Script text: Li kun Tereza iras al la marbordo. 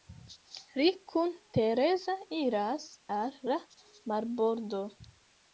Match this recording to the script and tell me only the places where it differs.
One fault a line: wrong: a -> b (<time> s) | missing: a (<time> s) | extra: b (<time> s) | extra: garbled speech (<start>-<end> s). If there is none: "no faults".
no faults